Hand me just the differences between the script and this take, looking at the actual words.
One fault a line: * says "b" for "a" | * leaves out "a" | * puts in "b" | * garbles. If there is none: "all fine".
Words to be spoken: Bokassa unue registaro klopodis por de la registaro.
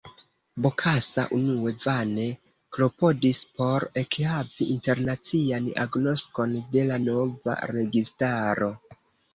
* says "vane" for "registaro"
* puts in "ekhavi internacian agnoskon"
* puts in "nova"